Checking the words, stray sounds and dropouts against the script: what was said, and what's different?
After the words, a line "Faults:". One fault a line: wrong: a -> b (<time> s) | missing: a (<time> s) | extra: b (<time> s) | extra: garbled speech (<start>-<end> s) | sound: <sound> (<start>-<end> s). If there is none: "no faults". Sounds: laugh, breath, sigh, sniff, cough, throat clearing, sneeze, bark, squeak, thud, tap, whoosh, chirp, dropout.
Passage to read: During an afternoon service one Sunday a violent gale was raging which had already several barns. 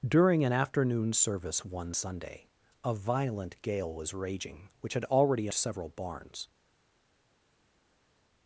During an afternoon service one Sunday a violent gale was raging which had already several barns.
Faults:
no faults